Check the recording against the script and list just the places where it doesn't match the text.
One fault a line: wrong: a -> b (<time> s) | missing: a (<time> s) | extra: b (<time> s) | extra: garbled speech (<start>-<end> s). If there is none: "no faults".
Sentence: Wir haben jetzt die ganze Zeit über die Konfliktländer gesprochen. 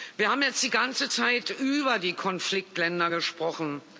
no faults